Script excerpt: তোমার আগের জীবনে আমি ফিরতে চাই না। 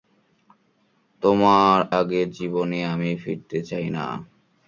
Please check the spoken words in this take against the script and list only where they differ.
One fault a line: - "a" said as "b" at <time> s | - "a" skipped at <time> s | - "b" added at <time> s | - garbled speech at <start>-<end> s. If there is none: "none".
none